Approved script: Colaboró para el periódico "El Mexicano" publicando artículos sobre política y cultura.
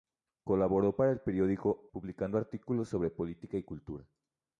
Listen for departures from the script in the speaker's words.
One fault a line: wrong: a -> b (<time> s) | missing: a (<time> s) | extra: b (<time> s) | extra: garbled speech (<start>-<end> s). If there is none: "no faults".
missing: El Mexicano (1.9 s)